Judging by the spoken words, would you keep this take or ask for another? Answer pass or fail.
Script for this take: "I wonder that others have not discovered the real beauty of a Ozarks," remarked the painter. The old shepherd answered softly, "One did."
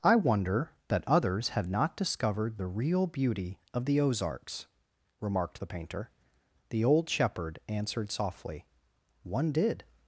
fail